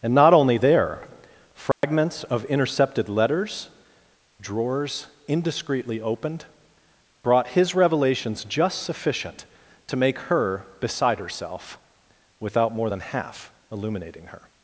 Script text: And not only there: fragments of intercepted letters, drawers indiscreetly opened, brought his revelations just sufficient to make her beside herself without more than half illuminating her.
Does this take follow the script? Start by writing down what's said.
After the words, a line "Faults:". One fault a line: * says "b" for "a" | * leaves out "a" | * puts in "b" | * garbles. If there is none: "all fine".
And not only there: fragments of intercepted letters, drawers indiscreetly opened, brought his revelations just sufficient to make her beside herself without more than half illuminating her.
Faults:
all fine